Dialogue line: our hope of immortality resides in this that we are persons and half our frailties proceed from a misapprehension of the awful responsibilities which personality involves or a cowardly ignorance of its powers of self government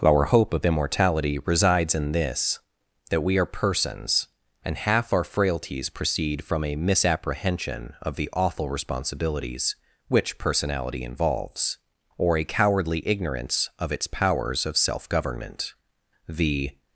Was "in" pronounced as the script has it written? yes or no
yes